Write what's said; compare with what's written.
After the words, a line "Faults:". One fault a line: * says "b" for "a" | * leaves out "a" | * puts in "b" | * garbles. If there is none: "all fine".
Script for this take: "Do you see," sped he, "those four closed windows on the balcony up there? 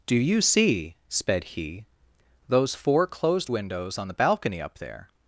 "Do you see," sped he, "those four closed windows on the balcony up there?
Faults:
all fine